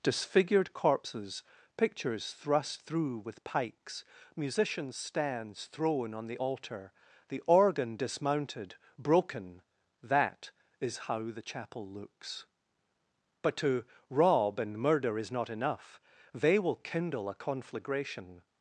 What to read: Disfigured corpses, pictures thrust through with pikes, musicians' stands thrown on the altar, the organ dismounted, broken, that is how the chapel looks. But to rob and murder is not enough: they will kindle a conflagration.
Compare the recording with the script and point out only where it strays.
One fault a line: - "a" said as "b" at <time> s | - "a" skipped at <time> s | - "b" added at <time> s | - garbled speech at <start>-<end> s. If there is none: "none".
none